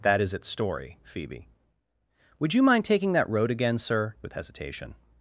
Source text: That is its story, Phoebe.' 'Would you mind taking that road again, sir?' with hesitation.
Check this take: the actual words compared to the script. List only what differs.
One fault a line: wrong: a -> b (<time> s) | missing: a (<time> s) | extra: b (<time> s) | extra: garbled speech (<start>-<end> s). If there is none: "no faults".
no faults